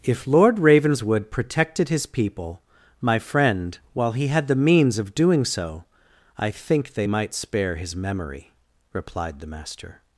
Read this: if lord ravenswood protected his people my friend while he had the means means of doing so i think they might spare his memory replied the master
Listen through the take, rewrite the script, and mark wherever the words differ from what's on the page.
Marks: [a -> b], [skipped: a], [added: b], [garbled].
if lord ravenswood protected his people my friend while he had the means [skipped: means] of doing so i think they might spare his memory replied the master